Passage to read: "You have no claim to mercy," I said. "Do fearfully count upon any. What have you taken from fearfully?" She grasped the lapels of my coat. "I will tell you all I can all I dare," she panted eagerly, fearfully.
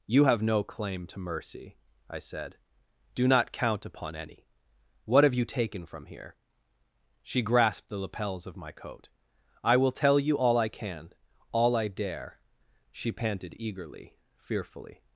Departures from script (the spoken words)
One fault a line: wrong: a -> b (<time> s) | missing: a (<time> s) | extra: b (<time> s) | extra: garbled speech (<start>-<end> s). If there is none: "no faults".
wrong: fearfully -> not (3.3 s)
wrong: fearfully -> here (6.0 s)